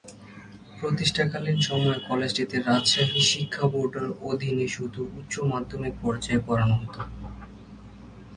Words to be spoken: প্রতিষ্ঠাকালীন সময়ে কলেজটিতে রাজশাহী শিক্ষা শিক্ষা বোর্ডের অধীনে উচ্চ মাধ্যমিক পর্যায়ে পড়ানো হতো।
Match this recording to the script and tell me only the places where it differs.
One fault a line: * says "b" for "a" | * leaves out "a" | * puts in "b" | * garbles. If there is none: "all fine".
* leaves out "শিক্ষা"
* puts in "শুধু"